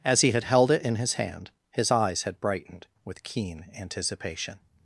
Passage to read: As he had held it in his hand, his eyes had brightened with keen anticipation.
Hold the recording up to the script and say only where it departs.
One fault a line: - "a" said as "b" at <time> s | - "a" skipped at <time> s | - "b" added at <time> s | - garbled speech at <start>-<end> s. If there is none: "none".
none